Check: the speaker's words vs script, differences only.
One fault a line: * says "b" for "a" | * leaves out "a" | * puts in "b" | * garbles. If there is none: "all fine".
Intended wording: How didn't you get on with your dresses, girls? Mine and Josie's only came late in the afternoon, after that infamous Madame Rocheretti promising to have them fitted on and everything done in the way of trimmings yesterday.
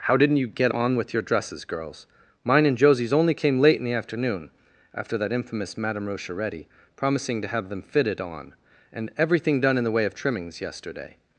all fine